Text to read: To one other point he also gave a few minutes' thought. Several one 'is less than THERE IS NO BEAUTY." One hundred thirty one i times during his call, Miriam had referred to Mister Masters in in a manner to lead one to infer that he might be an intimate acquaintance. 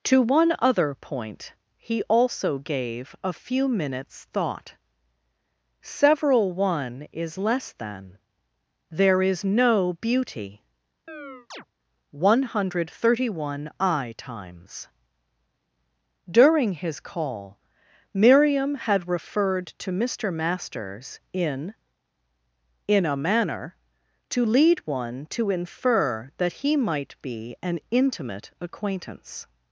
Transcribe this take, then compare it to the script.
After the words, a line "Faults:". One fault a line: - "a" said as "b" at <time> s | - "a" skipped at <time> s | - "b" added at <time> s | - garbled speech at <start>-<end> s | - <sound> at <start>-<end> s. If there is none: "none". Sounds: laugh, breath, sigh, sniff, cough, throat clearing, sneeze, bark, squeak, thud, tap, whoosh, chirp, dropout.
To one other point he also gave a few minutes' thought. Several one 'is less than THERE IS NO BEAUTY." One hundred thirty one i times during his call, Miriam had referred to Mister Masters in in a manner to lead one to infer that he might be an intimate acquaintance.
Faults:
- chirp at 11.1-11.7 s